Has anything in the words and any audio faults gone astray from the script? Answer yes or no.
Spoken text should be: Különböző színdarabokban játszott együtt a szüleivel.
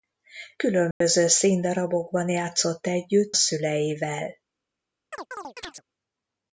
yes